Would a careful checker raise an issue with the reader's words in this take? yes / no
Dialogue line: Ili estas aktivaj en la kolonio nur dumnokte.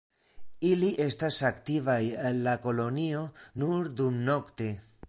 no